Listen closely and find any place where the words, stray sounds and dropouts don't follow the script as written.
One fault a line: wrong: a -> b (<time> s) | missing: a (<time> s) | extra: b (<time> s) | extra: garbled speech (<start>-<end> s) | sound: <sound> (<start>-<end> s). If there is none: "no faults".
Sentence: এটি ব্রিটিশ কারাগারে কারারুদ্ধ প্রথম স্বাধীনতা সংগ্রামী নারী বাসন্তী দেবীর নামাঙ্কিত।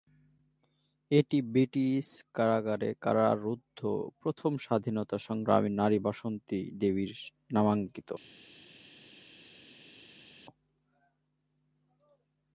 no faults